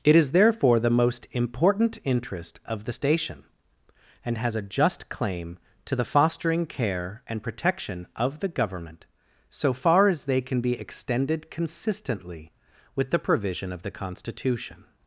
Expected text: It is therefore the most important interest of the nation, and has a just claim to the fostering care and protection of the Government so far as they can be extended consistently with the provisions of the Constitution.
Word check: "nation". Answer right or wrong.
wrong